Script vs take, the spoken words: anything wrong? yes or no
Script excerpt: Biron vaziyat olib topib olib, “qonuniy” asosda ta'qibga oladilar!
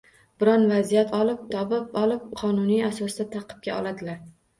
no